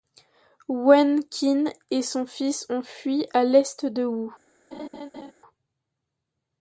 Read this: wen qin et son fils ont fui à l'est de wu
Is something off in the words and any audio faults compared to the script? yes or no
yes